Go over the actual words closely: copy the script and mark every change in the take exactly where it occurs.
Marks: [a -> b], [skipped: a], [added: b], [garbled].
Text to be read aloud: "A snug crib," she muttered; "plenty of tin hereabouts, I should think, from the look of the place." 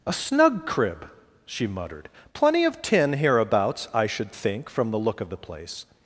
"A snug crib," she muttered; "plenty of tin hereabouts, I should think, from the look of the place."